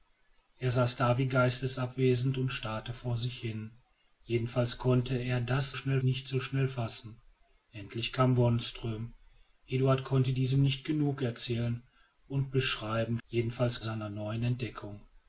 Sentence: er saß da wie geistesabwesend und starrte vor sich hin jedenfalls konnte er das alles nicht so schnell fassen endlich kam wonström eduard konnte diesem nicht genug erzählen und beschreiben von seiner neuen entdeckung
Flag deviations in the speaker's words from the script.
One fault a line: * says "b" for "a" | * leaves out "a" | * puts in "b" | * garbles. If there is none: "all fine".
* says "schnell" for "alles"
* says "jedenfalls" for "von"